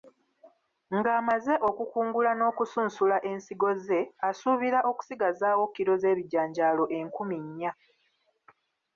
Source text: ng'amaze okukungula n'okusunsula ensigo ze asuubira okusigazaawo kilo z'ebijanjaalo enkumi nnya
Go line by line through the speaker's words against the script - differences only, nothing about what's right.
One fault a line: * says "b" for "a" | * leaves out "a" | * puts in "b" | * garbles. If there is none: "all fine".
all fine